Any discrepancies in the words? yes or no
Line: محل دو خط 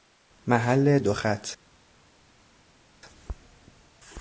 no